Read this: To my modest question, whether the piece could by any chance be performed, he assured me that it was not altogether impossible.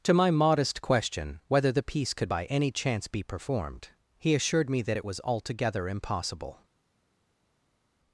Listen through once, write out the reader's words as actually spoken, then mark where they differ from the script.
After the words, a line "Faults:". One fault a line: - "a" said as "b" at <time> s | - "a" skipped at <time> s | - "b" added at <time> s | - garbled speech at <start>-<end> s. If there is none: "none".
To my modest question, whether the piece could by any chance be performed, he assured me that it was altogether impossible.
Faults:
- "not" skipped at 5.2 s